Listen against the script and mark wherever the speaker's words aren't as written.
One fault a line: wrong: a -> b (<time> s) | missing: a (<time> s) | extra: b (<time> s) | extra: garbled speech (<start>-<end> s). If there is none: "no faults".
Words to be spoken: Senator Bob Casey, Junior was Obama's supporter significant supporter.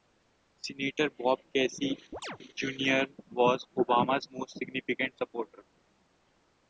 wrong: supporter -> most (4.3 s)